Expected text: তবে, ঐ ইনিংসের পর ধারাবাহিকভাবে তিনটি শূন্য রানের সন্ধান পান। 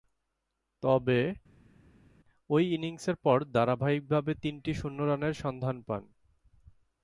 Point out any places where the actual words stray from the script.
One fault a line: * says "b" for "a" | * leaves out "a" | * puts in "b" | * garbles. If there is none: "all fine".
all fine